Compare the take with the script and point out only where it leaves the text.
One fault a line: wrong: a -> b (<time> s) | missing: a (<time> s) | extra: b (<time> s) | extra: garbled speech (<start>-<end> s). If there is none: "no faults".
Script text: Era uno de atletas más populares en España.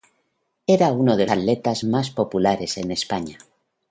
no faults